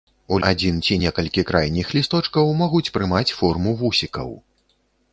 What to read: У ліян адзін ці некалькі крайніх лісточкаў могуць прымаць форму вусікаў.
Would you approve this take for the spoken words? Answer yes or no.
no